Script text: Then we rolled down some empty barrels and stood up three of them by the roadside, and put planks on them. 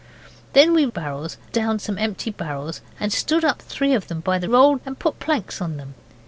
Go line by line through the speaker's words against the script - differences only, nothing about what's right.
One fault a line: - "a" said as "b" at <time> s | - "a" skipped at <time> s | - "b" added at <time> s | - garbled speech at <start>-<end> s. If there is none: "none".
- "rolled" said as "barrels" at 0.9 s
- "roadside" said as "rolled" at 4.4 s